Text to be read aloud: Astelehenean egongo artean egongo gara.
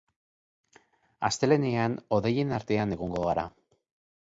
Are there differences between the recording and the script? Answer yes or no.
yes